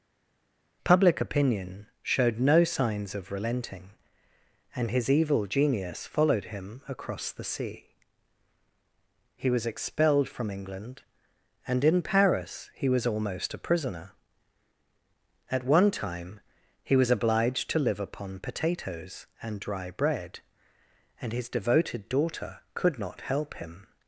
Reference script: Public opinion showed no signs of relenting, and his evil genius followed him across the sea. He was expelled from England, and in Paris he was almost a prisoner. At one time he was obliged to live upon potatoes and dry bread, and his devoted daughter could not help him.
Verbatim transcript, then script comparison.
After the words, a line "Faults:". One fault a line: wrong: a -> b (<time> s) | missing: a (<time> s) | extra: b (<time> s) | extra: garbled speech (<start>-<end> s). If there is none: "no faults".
Public opinion showed no signs of relenting, and his evil genius followed him across the sea. He was expelled from England, and in Paris he was almost a prisoner. At one time he was obliged to live upon potatoes and dry bread, and his devoted daughter could not help him.
Faults:
no faults